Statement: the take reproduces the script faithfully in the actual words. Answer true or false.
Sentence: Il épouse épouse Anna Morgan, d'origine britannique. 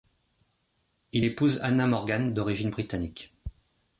false